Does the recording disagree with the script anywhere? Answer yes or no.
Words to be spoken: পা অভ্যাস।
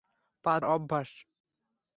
no